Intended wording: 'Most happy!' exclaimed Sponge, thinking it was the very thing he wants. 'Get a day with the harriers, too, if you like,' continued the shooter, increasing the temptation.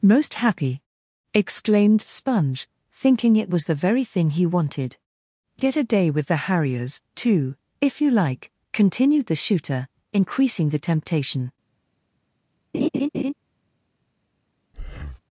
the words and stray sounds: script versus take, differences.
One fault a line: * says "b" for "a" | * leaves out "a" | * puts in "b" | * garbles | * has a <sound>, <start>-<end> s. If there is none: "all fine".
* says "wanted" for "wants"
* has a laugh, 12.7-13.3 s
* has a breath, 14.7-15.2 s